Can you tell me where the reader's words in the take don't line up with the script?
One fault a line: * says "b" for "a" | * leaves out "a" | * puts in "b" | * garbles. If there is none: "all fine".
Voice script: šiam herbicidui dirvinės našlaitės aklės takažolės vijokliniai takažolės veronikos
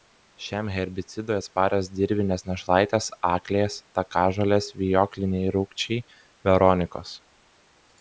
* puts in "atsparios"
* says "rūgčiai" for "takažolės"